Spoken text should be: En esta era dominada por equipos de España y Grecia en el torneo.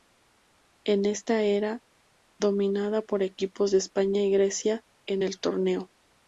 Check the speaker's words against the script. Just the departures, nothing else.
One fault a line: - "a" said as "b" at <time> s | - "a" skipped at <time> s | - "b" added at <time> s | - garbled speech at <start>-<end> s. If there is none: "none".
none